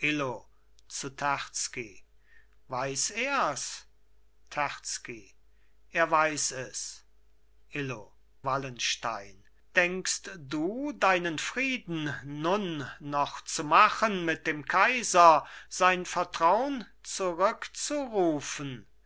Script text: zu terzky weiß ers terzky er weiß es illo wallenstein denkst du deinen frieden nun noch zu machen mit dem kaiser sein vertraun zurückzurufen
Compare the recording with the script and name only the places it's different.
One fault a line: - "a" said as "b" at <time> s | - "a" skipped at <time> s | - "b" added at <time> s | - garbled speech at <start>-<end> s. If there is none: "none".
none